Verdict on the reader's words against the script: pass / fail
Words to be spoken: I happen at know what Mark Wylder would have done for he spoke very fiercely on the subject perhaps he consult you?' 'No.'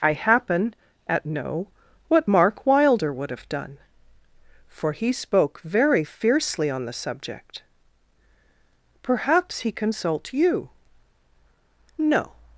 pass